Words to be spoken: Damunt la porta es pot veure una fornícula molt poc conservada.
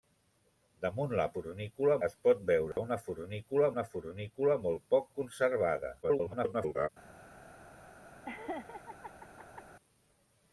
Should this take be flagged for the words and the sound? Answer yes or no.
yes